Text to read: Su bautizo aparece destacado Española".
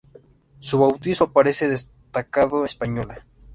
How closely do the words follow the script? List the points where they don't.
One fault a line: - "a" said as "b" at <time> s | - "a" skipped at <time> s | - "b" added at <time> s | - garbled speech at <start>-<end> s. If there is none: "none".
none